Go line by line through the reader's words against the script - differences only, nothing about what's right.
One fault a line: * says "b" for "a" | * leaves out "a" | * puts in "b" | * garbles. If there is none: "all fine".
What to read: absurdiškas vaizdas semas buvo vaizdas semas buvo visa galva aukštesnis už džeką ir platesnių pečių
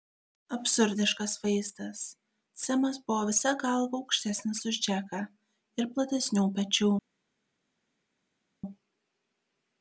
* leaves out "vaizdas semas buvo"